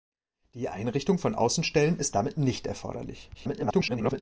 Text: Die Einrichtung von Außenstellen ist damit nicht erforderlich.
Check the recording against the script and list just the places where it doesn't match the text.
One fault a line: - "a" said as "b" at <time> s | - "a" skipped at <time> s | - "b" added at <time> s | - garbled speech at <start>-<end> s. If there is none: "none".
- garbled speech at 3.3-4.2 s